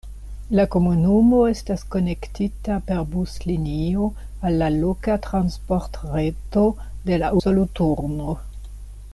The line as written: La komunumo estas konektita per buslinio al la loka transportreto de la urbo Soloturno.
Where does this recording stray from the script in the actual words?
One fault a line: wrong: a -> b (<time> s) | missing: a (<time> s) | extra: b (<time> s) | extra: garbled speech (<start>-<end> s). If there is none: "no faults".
missing: urbo (7.3 s)